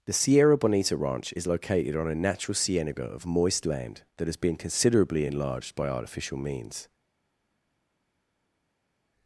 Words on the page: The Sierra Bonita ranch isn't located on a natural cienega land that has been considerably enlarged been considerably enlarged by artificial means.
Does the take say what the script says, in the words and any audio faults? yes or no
no